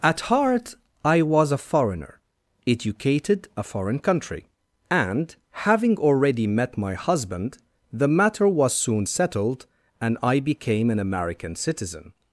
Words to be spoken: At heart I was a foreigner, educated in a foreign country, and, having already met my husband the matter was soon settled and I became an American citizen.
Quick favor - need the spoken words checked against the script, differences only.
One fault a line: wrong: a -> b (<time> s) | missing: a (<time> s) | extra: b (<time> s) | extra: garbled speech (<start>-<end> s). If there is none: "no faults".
missing: in (3.5 s)